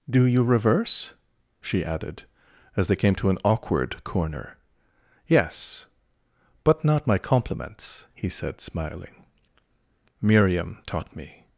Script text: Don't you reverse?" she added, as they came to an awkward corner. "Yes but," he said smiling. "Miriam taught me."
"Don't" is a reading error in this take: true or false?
true